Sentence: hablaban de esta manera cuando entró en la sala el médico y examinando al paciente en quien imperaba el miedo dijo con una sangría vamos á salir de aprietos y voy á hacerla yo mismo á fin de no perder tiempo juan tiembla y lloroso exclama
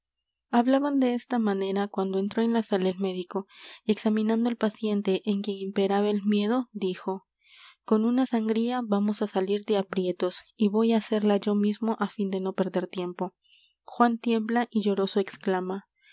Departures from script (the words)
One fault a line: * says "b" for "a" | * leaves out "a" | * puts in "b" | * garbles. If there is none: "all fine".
all fine